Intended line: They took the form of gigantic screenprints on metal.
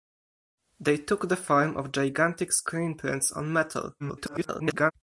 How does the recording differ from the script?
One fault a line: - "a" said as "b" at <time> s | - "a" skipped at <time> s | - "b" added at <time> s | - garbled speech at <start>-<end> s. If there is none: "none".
- garbled speech at 4.0-4.9 s